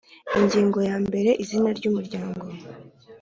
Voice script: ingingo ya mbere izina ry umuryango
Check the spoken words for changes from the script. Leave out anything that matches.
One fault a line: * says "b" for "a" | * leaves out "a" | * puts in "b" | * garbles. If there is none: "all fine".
all fine